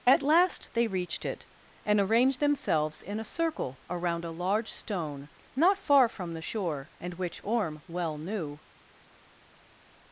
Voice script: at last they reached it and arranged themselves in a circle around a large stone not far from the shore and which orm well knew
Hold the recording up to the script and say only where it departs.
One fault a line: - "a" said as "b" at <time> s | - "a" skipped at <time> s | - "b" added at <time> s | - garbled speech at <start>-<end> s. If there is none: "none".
none